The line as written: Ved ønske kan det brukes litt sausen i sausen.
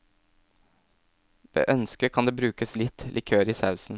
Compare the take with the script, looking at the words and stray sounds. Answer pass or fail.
fail